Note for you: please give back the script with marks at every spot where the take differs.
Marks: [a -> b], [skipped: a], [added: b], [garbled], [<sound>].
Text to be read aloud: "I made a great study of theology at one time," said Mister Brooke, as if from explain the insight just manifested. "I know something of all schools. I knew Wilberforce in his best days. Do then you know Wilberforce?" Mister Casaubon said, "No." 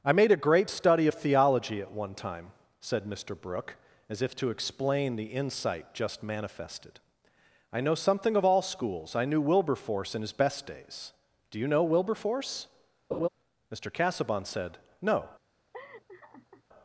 "I made a great study of theology at one time," said Mister Brooke, as if [from -> to] explain the insight just manifested. "I know something of all schools. I knew Wilberforce in his best days. Do [skipped: then] you know Wilberforce?" [laugh] Mister Casaubon said, "No." [laugh]